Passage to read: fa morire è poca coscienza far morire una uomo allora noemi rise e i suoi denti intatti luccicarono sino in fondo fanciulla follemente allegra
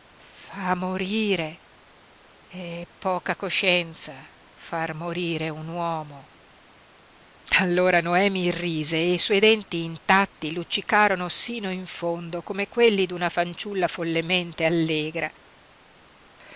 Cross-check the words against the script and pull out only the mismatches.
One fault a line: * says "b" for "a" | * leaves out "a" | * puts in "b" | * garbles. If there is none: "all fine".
* says "un" for "una"
* puts in "come quelli d'una"